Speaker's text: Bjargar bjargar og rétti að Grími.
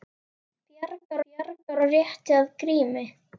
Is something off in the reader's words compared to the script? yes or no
no